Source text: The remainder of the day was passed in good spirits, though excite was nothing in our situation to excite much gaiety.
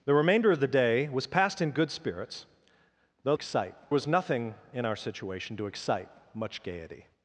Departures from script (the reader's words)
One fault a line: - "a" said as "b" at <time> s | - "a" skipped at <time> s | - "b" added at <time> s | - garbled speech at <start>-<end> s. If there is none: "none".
none